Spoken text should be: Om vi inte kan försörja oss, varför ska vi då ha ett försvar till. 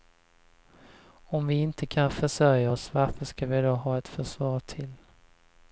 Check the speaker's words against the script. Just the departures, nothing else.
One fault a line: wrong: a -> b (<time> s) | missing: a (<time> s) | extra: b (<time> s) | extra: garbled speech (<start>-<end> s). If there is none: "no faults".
no faults